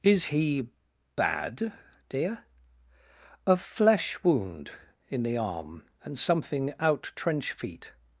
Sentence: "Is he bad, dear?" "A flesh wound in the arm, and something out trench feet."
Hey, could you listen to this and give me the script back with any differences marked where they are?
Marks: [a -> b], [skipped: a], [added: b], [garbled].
"Is he bad, dear?" "A flesh wound in the arm, and something out trench feet."